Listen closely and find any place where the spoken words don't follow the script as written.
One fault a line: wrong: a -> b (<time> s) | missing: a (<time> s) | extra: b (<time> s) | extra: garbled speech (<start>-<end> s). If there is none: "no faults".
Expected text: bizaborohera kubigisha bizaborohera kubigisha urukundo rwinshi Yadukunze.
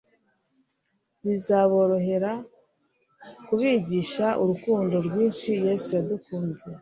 missing: bizaborohera kubigisha (4.3 s)
extra: Yesu (5.7 s)